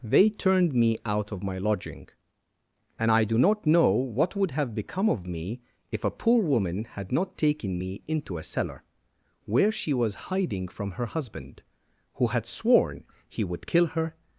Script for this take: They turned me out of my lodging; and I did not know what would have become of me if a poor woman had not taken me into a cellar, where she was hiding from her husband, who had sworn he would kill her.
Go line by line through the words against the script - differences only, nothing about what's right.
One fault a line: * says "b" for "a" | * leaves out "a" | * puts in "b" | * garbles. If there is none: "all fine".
* says "do" for "did"